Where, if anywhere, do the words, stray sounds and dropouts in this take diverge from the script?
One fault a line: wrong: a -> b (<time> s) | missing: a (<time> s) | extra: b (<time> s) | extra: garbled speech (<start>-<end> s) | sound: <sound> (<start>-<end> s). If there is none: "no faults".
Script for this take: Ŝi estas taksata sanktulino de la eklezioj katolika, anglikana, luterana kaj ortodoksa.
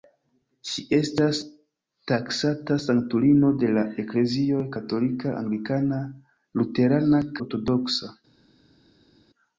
missing: kaj (7.2 s)